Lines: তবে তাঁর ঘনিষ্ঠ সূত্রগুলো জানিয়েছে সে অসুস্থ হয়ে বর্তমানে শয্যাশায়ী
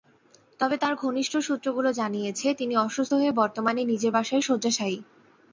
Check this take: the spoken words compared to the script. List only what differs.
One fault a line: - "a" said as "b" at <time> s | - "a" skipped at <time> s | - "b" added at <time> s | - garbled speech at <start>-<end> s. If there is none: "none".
- "সে" said as "তিনি" at 2.5 s
- "নিজের বাসায়" added at 3.8 s